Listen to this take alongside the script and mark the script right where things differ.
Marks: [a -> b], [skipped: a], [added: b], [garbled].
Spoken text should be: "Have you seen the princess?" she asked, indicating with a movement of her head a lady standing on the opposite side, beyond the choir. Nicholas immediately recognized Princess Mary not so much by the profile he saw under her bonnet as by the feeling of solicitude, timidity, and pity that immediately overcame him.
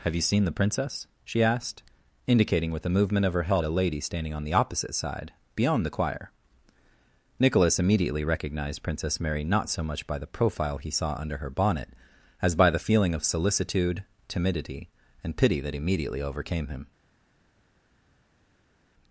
"Have you seen the princess?" she asked, indicating with a movement of her head a lady standing on the opposite side, beyond the choir. Nicholas immediately recognized Princess Mary not so much by the profile he saw under her bonnet as by the feeling of solicitude, timidity, and pity that immediately overcame him.